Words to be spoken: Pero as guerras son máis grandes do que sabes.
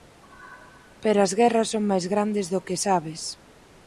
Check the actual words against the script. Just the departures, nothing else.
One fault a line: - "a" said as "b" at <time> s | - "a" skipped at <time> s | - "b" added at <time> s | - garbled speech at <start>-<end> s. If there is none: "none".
none